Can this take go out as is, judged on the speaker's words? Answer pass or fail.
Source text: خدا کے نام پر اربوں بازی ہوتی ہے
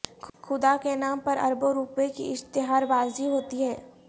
fail